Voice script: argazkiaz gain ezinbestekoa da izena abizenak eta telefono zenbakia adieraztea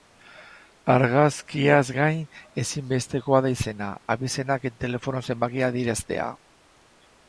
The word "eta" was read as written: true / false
true